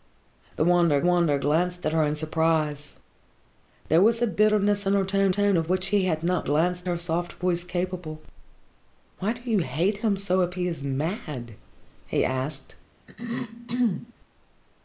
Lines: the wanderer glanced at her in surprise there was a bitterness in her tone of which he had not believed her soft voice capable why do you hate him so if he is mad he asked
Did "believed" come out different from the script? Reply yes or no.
yes